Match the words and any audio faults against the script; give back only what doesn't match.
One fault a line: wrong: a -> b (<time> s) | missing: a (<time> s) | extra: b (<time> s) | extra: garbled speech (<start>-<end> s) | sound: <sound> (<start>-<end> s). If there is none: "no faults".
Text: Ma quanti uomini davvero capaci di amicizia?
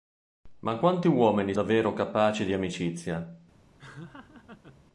sound: laugh (3.8-4.9 s)